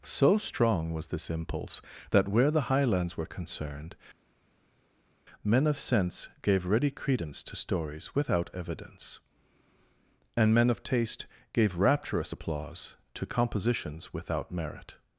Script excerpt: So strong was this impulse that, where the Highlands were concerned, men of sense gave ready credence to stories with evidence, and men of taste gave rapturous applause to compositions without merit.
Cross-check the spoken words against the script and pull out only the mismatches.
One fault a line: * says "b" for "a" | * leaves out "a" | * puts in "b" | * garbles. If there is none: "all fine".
* says "without" for "with"